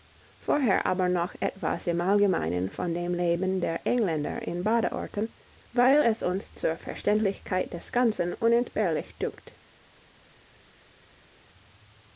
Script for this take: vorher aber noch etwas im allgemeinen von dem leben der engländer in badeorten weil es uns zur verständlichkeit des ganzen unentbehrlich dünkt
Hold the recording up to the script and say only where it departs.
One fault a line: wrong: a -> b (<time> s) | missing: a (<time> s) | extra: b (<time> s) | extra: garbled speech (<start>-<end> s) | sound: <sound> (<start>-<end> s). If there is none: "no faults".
no faults